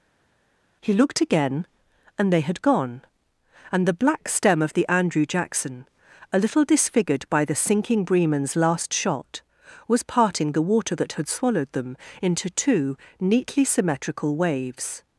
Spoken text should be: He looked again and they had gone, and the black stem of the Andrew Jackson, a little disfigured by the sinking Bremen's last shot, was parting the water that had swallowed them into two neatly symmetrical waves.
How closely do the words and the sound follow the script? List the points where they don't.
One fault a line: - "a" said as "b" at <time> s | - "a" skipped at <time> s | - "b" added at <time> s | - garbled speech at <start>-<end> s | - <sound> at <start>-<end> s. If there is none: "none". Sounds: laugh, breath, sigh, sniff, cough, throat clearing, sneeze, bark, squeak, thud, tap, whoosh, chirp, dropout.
none